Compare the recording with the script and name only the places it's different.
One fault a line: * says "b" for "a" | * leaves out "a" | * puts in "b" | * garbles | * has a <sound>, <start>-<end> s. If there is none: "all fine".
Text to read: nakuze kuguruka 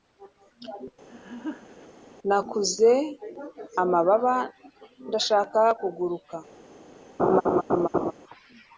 * has a laugh, 1.1-1.9 s
* puts in "amababa ndashaka"
* has a laugh, 7.2-8.1 s